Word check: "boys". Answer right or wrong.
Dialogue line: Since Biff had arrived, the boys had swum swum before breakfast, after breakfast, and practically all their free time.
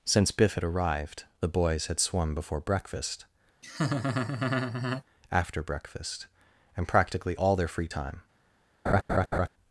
right